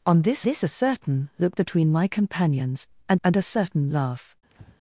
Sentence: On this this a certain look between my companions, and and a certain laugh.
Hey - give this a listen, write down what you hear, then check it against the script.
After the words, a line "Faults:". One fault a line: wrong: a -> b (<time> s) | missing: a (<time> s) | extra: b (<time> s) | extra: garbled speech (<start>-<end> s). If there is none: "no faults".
On this this a certain look between my companions, and and a certain laugh.
Faults:
no faults